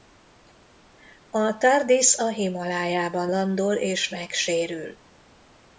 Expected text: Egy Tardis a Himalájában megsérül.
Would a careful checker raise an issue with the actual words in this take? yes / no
yes